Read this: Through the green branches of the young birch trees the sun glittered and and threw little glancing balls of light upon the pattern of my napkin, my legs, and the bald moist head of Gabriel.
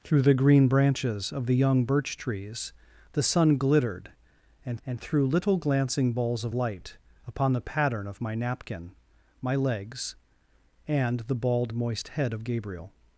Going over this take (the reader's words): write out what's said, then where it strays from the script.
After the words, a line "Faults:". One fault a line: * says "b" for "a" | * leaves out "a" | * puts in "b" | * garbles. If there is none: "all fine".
Through the green branches of the young birch trees the sun glittered and and threw little glancing balls of light upon the pattern of my napkin, my legs, and the bald moist head of Gabriel.
Faults:
all fine